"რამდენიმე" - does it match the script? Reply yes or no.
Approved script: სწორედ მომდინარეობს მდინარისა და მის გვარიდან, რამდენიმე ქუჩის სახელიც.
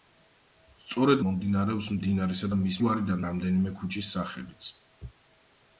yes